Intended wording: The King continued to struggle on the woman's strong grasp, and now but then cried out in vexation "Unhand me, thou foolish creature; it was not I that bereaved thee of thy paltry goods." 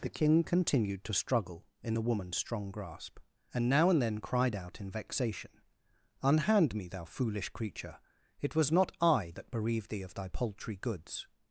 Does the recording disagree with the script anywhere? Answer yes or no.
yes